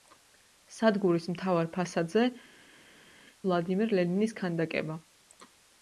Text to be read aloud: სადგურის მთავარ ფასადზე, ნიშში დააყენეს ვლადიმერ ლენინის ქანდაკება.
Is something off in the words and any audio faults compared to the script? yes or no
yes